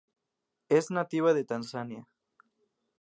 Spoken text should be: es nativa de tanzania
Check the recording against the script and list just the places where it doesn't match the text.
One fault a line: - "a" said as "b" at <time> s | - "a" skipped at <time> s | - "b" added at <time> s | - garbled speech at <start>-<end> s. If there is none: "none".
none